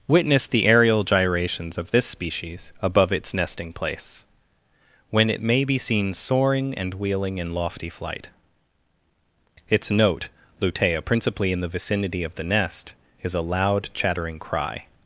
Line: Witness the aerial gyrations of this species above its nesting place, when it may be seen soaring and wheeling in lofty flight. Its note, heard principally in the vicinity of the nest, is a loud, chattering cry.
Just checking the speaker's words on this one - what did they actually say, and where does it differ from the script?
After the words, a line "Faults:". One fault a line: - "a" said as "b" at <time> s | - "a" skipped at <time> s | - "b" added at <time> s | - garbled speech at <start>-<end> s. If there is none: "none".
Witness the aerial gyrations of this species above its nesting place, when it may be seen soaring and wheeling in lofty flight. Its note, lutea principally in the vicinity of the nest, is a loud, chattering cry.
Faults:
- "heard" said as "lutea" at 10.6 s